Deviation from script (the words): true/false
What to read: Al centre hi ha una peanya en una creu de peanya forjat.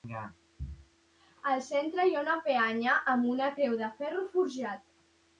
true